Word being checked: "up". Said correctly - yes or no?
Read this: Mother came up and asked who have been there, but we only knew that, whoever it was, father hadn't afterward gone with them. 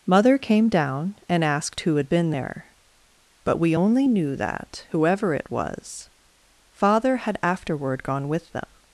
no